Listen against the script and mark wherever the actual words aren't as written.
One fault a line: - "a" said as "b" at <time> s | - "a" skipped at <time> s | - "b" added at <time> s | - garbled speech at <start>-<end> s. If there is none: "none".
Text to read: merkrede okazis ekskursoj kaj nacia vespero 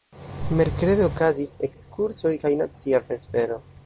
none